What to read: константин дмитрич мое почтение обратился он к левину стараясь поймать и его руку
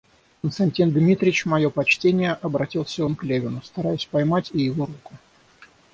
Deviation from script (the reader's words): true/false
false